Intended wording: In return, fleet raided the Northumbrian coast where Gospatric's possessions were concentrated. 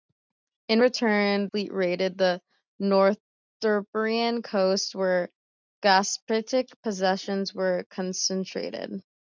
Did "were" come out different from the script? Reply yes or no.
no